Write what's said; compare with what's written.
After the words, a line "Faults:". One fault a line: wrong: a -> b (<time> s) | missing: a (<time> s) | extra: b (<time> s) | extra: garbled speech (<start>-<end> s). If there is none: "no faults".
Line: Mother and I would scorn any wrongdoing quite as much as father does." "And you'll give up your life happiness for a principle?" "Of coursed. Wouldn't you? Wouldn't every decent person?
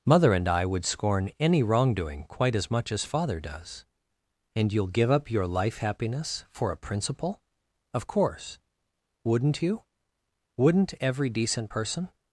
Mother and I would scorn any wrongdoing quite as much as father does." "And you'll give up your life happiness for a principle?" "Of course. Wouldn't you? Wouldn't every decent person?
Faults:
wrong: coursed -> course (8.1 s)